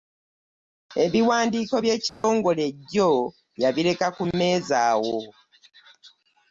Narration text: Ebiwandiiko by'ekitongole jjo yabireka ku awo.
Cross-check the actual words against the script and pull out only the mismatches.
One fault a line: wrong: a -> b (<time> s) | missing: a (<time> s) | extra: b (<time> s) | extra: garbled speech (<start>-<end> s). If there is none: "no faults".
extra: mmeeza (4.3 s)